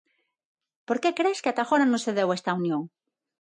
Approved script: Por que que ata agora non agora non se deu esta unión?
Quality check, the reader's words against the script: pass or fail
fail